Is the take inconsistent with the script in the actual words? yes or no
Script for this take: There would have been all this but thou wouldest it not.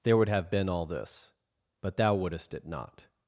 no